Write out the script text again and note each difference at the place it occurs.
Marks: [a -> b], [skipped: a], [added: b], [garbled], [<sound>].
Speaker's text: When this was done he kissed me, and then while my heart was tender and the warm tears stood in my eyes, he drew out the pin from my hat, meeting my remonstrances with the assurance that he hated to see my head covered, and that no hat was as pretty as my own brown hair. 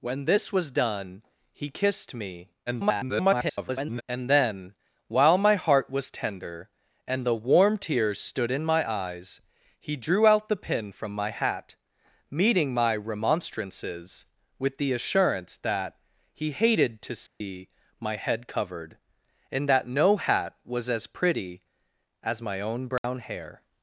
When this was done he kissed me, [garbled] and then while my heart was tender and the warm tears stood in my eyes, he drew out the pin from my hat, meeting my remonstrances with the assurance that he hated to see [dropout] my head covered, and that no hat was as pretty as my own brown [dropout] hair.